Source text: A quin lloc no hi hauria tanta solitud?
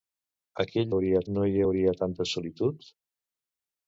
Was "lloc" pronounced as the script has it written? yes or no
no